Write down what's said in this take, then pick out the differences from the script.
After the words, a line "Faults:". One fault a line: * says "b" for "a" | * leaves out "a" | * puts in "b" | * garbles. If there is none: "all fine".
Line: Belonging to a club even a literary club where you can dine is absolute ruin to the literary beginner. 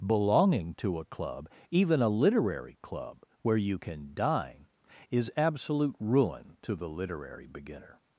Belonging to a club even a literary club where you can dine is absolute ruin to the literary beginner.
Faults:
all fine